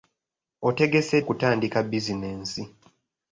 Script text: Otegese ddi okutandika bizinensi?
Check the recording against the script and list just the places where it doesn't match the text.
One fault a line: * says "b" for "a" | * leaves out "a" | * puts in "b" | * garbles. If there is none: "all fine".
* leaves out "ddi"